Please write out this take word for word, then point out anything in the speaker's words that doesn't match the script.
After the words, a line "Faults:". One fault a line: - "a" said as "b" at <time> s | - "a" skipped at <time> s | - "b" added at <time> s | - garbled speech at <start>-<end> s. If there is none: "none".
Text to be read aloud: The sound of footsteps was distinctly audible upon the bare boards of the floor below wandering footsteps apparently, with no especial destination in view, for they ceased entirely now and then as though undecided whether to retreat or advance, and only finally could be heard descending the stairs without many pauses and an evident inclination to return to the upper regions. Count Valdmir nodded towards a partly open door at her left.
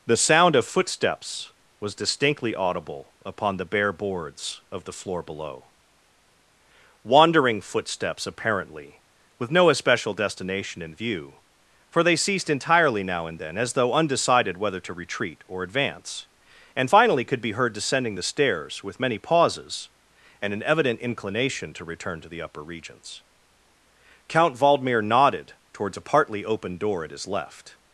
The sound of footsteps was distinctly audible upon the bare boards of the floor below wandering footsteps apparently, with no especial destination in view, for they ceased entirely now and then as though undecided whether to retreat or advance, and finally could be heard descending the stairs with many pauses and an evident inclination to return to the upper regions. Count Valdmir nodded towards a partly open door at his left.
Faults:
- "only" skipped at 16.9 s
- "without" said as "with" at 18.8 s
- "her" said as "his" at 27.1 s